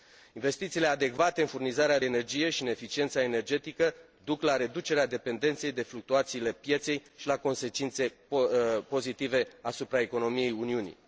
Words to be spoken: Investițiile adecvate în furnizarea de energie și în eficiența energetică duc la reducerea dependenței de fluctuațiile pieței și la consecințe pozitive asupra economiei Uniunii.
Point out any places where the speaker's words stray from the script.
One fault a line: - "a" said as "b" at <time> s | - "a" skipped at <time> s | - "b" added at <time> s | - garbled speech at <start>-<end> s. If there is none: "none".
- "de" skipped at 2.0 s